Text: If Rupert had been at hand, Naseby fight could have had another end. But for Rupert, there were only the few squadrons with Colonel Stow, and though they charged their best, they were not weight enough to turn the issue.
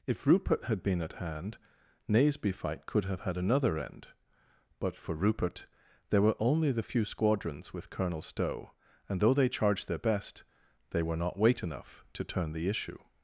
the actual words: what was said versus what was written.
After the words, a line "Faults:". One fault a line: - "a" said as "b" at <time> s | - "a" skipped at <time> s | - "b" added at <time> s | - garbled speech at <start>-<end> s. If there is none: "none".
If Rupert had been at hand, Naseby fight could have had another end. But for Rupert, there were only the few squadrons with Colonel Stow, and though they charged their best, they were not weight enough to turn the issue.
Faults:
none